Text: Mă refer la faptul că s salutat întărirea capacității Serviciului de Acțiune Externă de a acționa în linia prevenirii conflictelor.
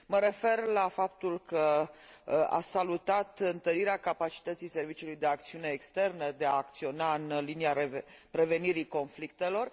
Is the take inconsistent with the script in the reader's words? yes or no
no